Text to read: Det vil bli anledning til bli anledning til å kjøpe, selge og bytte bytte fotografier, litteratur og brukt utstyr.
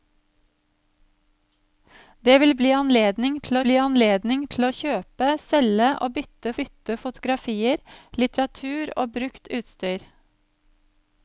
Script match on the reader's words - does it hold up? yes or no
yes